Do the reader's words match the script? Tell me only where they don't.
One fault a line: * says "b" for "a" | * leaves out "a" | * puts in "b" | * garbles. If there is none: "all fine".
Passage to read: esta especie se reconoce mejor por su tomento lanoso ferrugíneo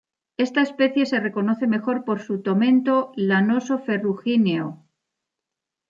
all fine